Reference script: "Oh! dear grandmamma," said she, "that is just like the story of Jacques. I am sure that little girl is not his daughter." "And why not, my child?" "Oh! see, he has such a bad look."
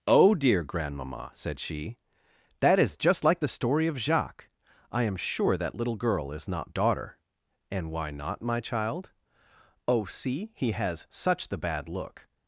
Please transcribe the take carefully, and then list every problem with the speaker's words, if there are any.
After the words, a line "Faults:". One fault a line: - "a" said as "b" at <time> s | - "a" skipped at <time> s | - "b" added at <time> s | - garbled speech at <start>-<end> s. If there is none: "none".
"Oh! dear grandmamma," said she, "that is just like the story of Jacques. I am sure that little girl is not daughter." "And why not, my child?" "Oh! see, he has such the bad look."
Faults:
- "his" skipped at 6.7 s
- "a" said as "the" at 11.5 s